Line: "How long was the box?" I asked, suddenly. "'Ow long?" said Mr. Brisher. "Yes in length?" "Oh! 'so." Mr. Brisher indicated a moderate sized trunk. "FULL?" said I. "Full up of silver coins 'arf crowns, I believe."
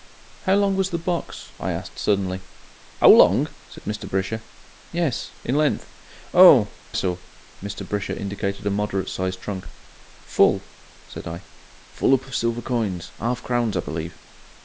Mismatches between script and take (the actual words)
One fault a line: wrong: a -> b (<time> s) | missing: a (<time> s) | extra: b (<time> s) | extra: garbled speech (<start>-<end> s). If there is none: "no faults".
no faults